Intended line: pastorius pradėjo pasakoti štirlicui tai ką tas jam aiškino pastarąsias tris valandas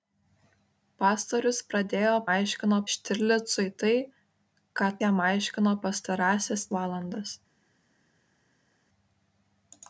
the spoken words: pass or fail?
fail